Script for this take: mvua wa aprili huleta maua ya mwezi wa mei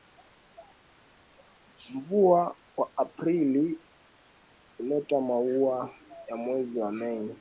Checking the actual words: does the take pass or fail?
pass